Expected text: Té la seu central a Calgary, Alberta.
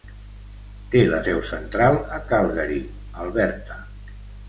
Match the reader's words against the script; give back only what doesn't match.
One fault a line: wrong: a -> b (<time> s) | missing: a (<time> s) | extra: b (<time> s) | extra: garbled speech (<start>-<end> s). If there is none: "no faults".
no faults